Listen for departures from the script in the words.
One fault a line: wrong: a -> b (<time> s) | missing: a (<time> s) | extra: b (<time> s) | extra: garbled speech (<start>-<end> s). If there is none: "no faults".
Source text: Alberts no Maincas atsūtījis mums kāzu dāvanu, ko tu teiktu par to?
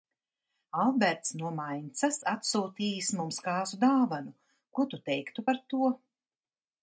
no faults